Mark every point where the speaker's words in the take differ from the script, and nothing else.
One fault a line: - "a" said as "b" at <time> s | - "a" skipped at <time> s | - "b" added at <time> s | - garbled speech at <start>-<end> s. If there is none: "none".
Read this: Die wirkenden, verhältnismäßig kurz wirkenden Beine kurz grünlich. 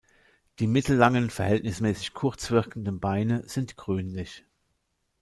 - "wirkenden" said as "mittellangen" at 0.7 s
- "kurz" said as "sind" at 3.5 s